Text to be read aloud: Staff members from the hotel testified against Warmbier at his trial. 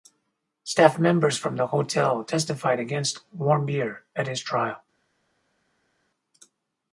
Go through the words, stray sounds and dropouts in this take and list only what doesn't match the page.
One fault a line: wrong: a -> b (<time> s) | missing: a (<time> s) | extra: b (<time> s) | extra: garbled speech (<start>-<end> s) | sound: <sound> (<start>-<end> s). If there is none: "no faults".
no faults